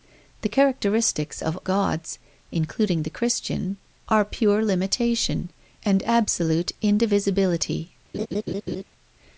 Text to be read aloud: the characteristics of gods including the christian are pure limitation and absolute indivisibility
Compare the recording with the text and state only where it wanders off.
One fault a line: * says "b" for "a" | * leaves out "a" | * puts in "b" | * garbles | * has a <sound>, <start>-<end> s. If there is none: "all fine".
* has a laugh, 8.1-8.8 s